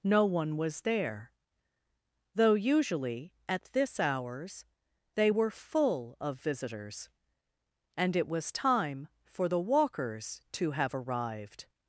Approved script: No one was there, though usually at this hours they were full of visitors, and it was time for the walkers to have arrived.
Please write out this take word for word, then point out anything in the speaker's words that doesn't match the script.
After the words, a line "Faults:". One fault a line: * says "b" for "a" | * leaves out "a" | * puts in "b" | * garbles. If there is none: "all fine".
No one was there, though usually at this hours they were full of visitors, and it was time for the walkers to have arrived.
Faults:
all fine